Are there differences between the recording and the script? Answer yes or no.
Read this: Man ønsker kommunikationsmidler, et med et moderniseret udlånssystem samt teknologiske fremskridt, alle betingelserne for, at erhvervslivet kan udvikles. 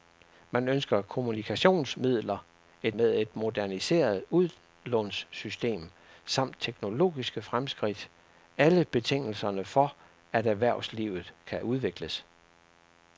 no